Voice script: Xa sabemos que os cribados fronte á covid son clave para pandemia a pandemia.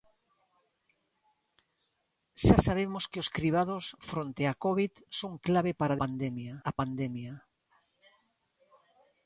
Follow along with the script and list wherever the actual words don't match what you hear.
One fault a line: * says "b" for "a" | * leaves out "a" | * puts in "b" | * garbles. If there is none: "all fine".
all fine